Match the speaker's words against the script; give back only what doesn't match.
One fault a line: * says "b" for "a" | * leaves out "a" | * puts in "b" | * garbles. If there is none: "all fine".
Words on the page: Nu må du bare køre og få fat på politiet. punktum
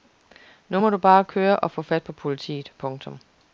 all fine